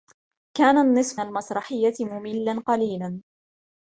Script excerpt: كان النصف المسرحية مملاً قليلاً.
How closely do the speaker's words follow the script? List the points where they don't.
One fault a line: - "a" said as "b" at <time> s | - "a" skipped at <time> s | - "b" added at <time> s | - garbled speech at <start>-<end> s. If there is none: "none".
none